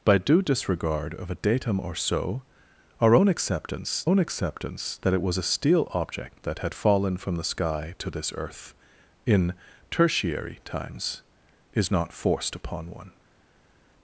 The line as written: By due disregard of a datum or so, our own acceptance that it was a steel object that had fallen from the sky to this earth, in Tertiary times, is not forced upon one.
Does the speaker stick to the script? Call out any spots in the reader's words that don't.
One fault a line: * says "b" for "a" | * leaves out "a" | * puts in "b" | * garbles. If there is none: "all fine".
* puts in "own acceptance"